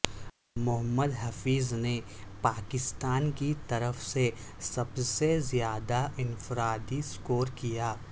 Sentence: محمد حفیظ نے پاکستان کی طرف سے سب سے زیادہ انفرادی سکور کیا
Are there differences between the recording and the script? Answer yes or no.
no